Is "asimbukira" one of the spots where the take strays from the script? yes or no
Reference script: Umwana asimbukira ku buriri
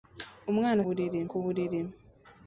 yes